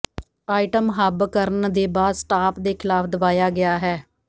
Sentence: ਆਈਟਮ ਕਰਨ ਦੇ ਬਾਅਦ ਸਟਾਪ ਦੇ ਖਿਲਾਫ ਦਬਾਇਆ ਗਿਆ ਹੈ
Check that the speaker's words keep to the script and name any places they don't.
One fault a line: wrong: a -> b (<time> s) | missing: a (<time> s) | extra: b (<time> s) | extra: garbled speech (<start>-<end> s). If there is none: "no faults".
extra: ਹੱਬ (0.9 s)